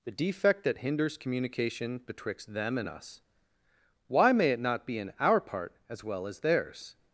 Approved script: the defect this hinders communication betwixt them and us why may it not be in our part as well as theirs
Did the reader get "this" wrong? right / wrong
wrong